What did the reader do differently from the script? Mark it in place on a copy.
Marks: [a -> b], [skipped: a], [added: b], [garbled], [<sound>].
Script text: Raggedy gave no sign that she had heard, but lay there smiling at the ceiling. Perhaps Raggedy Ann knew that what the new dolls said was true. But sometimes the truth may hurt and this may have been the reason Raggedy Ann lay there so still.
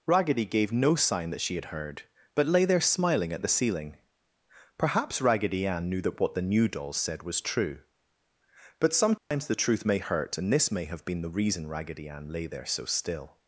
Raggedy gave no sign that she had heard, but lay there smiling at the ceiling. Perhaps Raggedy Ann knew that what the new dolls said was true. But sometimes [dropout] the truth may hurt and this may have been the reason Raggedy Ann lay there so still.